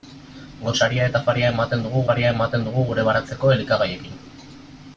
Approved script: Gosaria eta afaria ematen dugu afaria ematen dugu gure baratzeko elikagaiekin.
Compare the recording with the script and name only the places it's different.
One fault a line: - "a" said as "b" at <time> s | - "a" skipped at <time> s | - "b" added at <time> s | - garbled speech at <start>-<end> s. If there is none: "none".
none